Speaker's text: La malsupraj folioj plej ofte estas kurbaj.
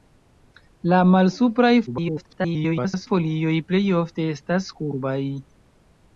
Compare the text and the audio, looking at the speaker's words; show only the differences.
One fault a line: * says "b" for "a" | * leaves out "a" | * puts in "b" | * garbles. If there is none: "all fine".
* garbles